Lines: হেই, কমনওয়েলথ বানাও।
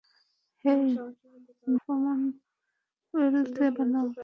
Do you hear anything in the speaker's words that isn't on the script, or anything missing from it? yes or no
no